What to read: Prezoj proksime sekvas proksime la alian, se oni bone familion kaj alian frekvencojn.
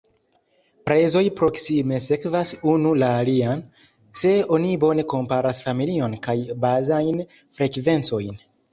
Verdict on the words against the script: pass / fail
fail